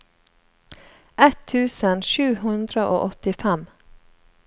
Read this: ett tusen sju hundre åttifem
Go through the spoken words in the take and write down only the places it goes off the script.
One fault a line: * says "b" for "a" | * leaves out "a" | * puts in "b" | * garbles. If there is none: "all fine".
* puts in "og"